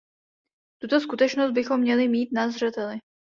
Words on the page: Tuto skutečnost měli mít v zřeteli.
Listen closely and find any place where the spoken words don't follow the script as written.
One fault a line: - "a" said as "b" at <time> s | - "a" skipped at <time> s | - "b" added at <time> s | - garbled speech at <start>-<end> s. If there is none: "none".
- "bychom" added at 1.5 s
- "v" said as "na" at 2.3 s